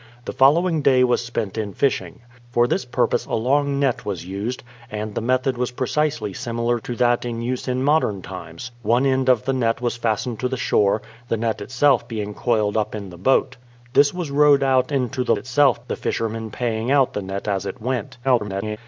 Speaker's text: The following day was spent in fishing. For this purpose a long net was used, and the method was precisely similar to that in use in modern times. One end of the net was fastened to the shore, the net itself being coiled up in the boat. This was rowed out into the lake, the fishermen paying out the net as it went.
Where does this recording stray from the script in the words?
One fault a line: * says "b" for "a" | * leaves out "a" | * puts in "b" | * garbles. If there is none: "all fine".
* says "itself" for "lake"
* garbles